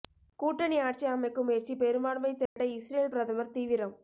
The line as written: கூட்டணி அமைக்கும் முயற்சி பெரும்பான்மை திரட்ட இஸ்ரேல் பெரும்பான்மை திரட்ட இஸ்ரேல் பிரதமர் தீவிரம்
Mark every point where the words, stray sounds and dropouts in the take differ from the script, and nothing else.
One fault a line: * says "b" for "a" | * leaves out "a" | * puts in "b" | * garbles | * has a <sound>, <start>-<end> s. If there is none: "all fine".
* puts in "ஆட்சி"
* has a dropout, 2.5-2.6 s
* leaves out "பெரும்பான்மை திரட்ட இஸ்ரேல்"